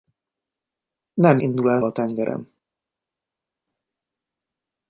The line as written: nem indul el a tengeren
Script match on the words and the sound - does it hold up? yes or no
yes